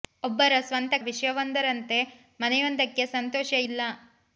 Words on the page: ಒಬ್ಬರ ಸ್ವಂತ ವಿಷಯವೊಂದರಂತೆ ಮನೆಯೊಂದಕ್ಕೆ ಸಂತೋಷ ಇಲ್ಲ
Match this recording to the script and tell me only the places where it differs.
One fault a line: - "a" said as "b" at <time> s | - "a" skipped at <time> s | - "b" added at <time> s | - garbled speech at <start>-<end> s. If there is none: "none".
none